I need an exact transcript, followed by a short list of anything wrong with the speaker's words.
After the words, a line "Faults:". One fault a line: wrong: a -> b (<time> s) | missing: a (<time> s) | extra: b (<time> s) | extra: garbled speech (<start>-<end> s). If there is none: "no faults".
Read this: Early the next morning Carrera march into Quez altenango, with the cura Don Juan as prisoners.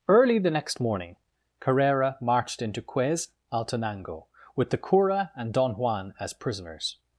Early the next morning Carrera marched into Quez altenango, with the cura and Don Juan as prisoners.
Faults:
wrong: march -> marched (2.2 s)
extra: and (5.3 s)